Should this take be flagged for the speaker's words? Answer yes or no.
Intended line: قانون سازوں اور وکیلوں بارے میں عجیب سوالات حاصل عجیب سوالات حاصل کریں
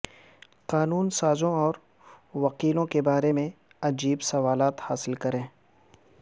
yes